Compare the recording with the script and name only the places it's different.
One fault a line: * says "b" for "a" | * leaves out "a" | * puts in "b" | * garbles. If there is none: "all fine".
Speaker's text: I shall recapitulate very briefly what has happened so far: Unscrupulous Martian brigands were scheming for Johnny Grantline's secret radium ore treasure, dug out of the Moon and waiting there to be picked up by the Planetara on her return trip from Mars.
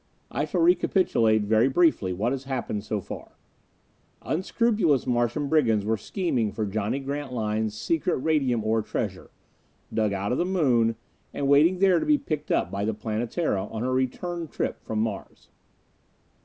all fine